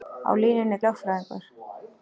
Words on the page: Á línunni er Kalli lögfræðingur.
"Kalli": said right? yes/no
no